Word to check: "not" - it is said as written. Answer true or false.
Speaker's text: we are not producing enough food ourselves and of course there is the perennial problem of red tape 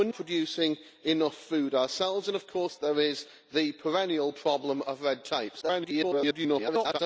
false